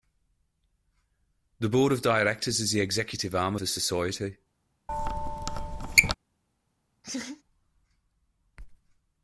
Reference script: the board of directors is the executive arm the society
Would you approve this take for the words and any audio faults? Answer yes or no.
no